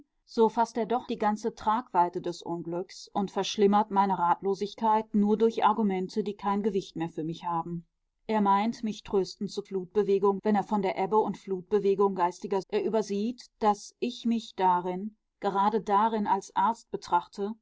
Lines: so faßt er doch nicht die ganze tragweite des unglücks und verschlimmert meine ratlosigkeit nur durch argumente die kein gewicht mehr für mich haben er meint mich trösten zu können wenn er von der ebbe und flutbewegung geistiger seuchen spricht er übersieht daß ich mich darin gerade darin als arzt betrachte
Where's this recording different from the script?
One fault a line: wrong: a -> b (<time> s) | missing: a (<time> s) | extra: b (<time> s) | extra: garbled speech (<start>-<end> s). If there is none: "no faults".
missing: nicht (1.1 s)
wrong: können -> flutbewegung (9.6 s)
missing: seuchen spricht (12.6 s)